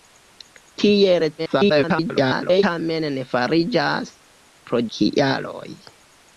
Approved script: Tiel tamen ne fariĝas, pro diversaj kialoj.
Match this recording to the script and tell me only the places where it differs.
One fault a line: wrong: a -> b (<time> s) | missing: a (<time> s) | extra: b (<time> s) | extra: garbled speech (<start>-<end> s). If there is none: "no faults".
extra: garbled speech (1.4-2.6 s)
missing: diversaj (4.8 s)